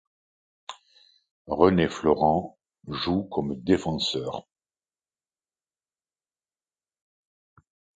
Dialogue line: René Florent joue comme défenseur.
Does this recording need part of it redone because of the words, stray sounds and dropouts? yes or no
no